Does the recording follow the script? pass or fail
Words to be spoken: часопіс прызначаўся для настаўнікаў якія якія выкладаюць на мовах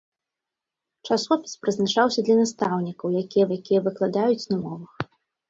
pass